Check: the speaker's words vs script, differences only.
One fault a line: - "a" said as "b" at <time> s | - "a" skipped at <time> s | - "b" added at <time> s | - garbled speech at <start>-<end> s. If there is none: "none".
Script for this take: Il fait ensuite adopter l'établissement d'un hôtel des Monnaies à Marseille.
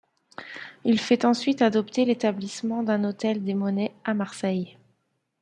none